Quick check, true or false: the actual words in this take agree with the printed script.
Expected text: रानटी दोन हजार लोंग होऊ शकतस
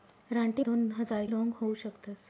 true